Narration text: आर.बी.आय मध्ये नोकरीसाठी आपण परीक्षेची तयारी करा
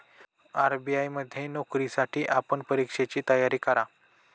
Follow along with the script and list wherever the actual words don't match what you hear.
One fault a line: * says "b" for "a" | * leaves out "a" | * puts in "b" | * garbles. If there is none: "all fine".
all fine